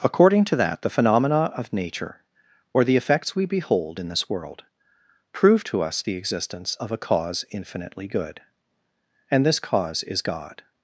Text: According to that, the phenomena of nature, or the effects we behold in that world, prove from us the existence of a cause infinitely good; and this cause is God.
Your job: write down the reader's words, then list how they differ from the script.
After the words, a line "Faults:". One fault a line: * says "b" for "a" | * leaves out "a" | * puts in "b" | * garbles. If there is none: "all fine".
According to that, the phenomena of nature, or the effects we behold in this world, prove to us the existence of a cause infinitely good; and this cause is God.
Faults:
* says "this" for "that"
* says "to" for "from"